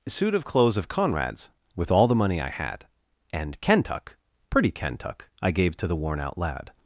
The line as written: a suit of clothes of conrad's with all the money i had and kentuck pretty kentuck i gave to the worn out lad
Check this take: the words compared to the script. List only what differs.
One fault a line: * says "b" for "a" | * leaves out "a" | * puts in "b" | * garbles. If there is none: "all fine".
* leaves out "a"